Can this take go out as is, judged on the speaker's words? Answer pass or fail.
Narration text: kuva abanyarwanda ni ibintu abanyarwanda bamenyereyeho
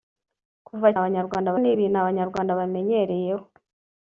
pass